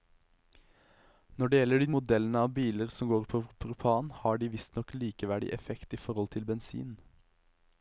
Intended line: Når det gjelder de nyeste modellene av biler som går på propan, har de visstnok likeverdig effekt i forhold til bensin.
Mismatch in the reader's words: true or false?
true